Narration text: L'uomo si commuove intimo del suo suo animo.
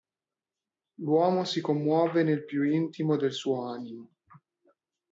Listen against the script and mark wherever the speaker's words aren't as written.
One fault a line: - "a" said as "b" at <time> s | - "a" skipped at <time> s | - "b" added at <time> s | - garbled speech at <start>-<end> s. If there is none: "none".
- "nel più" added at 2.2 s
- "suo" skipped at 3.7 s